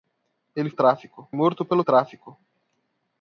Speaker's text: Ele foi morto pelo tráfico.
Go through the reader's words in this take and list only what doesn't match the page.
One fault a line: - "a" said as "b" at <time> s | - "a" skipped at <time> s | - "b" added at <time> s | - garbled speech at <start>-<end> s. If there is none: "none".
- "foi" said as "tráfico" at 0.7 s